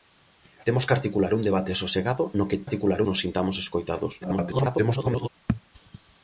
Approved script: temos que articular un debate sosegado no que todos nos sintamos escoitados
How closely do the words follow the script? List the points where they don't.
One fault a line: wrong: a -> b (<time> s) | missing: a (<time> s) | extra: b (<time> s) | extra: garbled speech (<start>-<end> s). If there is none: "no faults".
wrong: todos -> articular (2.6 s)
extra: garbled speech (4.2-5.3 s)